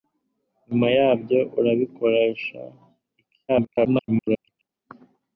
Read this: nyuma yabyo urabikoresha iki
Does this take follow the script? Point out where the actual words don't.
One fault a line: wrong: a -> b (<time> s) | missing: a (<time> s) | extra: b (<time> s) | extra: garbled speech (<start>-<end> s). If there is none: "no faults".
extra: garbled speech (3.5-4.7 s)